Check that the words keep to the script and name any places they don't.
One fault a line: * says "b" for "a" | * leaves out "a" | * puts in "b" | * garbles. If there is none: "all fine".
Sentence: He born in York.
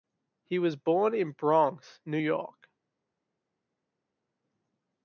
* puts in "was"
* puts in "Bronx New"